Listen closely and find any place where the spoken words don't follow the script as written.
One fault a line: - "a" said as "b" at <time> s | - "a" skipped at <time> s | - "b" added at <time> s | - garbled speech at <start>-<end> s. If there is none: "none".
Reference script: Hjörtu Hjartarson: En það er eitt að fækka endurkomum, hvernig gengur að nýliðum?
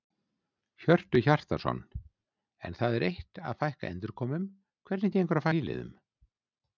none